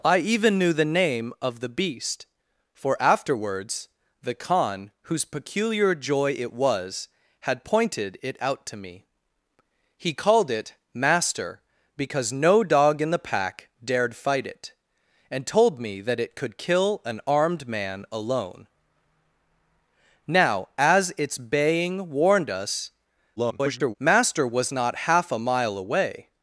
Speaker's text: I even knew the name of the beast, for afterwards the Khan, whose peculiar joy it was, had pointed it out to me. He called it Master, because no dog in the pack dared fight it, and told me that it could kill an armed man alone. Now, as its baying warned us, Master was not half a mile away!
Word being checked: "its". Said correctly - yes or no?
yes